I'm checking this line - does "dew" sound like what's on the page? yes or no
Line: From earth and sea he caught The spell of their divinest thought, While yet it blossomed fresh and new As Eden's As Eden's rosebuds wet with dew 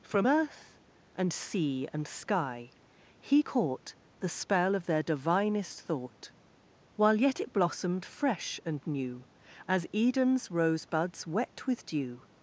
yes